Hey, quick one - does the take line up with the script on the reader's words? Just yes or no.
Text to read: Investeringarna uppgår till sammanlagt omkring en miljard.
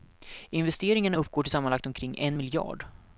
yes